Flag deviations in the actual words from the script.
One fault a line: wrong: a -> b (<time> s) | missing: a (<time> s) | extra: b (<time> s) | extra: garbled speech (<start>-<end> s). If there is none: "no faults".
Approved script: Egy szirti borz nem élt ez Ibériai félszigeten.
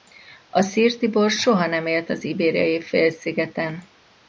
wrong: Egy -> A (0.5 s)
extra: soha (1.3 s)
wrong: ez -> az (2.1 s)